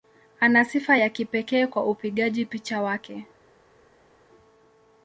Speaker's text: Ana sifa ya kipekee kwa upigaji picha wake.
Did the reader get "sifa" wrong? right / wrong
right